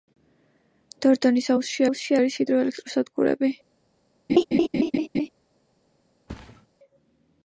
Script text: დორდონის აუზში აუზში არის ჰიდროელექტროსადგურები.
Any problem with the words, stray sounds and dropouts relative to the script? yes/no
yes